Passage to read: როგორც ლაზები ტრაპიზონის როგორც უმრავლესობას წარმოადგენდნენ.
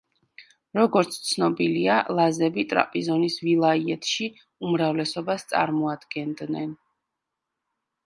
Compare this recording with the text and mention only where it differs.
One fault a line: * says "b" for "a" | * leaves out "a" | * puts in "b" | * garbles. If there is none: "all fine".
* puts in "ცნობილია"
* says "ვილაიეთში" for "როგორც"